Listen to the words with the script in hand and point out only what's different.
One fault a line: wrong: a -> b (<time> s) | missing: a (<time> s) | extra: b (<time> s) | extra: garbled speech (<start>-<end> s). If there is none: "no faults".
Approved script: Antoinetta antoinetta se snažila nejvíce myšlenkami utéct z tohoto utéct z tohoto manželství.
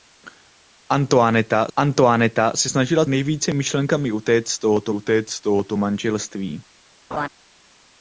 no faults